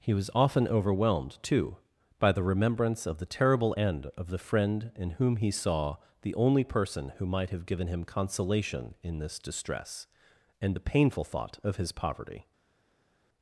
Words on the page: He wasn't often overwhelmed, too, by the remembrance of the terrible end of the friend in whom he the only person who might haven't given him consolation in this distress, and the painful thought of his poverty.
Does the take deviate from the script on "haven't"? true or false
true